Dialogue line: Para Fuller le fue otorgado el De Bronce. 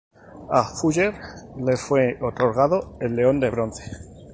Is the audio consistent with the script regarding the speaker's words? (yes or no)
no